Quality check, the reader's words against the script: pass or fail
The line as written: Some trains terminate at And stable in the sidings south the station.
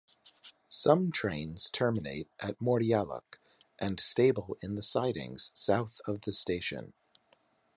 fail